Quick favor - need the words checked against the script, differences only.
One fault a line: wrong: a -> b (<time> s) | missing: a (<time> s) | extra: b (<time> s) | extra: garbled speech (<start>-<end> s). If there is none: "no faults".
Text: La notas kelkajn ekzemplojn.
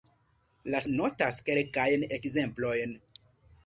no faults